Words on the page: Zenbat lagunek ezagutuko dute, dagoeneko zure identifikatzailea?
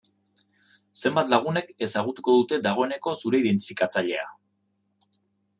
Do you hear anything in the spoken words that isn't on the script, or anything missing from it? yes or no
no